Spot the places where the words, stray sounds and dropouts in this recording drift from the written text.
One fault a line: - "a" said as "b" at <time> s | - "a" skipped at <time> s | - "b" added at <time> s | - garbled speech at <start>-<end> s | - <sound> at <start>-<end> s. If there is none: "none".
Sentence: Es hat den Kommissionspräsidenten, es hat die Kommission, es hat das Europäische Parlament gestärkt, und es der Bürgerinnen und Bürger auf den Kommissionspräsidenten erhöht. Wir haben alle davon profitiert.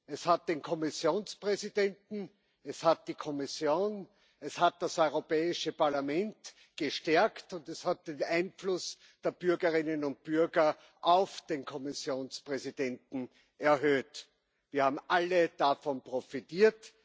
- "hat den Einfluss" added at 7.8 s